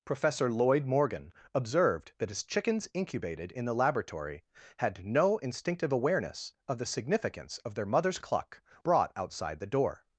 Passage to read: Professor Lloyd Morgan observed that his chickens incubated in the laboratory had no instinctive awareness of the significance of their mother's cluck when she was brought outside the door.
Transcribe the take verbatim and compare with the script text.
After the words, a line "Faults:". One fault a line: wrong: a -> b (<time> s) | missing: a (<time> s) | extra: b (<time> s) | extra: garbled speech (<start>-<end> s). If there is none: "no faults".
Professor Lloyd Morgan observed that his chickens incubated in the laboratory had no instinctive awareness of the significance of their mother's cluck brought outside the door.
Faults:
missing: when she was (8.6 s)